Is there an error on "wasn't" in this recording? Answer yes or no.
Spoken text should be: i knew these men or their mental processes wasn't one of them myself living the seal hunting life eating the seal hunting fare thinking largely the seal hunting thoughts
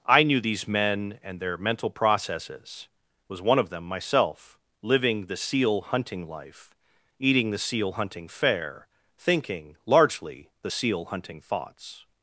yes